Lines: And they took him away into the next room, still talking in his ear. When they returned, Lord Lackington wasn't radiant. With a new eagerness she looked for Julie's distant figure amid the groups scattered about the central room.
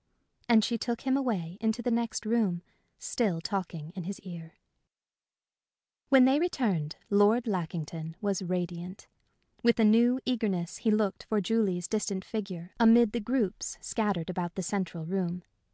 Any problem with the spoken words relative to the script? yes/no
yes